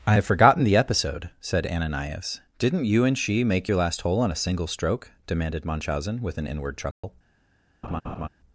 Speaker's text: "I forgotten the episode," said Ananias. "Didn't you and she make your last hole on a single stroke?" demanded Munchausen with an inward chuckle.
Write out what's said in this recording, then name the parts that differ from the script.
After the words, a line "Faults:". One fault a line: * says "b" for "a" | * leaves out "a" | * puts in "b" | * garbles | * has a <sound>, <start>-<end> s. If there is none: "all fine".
"I have forgotten the episode," said Ananias. "Didn't you and she make your last hole on a single stroke?" demanded Munchausen with an inward chuckle.
Faults:
* puts in "have"
* has a dropout, 6.9-7.0 s
* has a laugh, 7.8-8.3 s